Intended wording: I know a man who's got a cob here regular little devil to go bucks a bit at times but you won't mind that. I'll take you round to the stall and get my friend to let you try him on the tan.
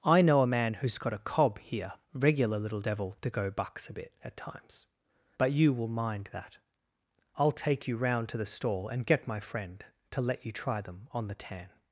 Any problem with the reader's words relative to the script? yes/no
yes